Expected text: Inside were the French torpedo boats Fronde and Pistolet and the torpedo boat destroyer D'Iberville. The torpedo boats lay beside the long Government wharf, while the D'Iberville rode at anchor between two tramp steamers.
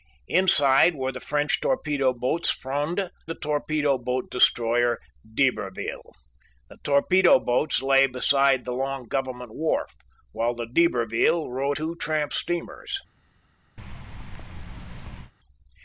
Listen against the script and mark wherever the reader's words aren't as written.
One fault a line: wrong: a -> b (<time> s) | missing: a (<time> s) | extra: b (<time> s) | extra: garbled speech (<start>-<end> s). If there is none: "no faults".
missing: and Pistolet and (3.1 s)
missing: at anchor between (11.8 s)